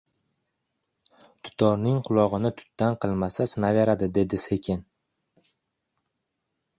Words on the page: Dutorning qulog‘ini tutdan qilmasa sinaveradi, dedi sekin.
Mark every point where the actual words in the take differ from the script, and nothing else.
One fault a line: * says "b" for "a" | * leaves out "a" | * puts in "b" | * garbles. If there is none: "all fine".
all fine